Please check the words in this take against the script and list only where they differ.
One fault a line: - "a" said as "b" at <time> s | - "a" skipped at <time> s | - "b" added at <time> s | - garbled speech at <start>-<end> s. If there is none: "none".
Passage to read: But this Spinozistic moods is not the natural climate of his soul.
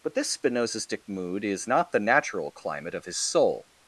- "moods" said as "mood" at 1.1 s